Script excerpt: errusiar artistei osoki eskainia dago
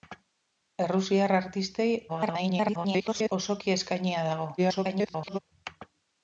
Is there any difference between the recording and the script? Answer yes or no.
yes